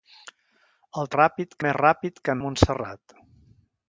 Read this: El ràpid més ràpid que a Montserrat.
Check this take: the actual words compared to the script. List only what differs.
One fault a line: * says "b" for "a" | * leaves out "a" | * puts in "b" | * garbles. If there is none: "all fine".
all fine